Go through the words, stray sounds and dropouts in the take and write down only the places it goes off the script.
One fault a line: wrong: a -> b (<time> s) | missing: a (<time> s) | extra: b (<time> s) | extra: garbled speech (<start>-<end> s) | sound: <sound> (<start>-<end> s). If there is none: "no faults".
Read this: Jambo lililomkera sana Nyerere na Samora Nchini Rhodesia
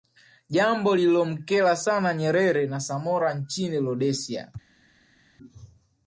no faults